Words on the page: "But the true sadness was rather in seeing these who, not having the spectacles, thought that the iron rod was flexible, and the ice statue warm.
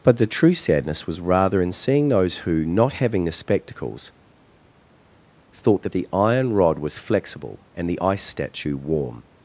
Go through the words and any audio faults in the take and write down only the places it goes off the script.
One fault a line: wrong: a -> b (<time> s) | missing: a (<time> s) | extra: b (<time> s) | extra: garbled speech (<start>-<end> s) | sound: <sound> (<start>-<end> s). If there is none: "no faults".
wrong: these -> those (2.1 s)